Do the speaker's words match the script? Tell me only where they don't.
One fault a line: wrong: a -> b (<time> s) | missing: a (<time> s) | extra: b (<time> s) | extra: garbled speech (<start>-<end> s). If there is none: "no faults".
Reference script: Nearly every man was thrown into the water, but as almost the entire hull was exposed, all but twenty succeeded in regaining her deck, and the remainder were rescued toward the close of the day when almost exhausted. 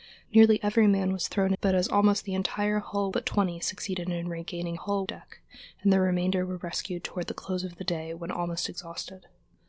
missing: into the water (1.5 s)
missing: was exposed all (3.1 s)
wrong: her -> hull (4.7 s)